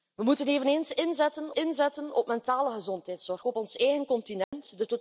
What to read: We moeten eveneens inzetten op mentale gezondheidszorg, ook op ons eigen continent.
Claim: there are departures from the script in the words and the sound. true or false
true